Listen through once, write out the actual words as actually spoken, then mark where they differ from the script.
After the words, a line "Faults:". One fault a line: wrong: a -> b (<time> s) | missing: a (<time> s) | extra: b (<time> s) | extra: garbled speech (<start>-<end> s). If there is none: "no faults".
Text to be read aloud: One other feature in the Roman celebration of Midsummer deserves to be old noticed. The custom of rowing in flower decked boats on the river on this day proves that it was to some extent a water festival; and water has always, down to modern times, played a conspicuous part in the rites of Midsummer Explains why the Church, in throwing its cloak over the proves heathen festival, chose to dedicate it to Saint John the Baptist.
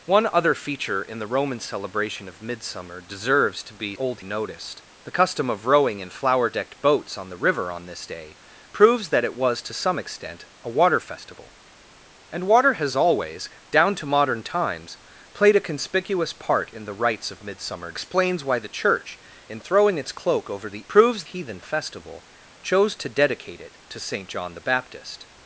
One other feature in the Roman celebration of Midsummer deserves to be old noticed. The custom of rowing in flower decked boats on the river on this day proves that it was to some extent a water festival; and water has always, down to modern times, played a conspicuous part in the rites of Midsummer Explains why the Church, in throwing its cloak over the proves heathen festival, chose to dedicate it to Saint John the Baptist.
Faults:
no faults